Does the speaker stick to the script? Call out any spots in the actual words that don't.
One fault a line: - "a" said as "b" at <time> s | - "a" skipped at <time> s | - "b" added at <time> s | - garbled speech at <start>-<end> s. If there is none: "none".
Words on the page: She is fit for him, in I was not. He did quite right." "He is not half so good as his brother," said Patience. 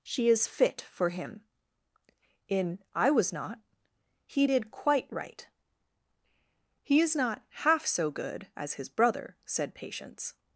none